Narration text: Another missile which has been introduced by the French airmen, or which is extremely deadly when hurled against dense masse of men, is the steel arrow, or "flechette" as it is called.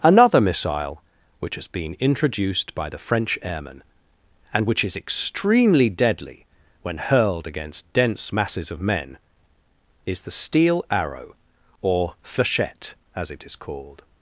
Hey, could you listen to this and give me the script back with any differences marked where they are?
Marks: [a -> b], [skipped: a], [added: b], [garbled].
Another missile which has been introduced by the French airmen, [or -> and] which is extremely deadly when hurled against dense [masse -> masses] of men, is the steel arrow, or "flechette" as it is called.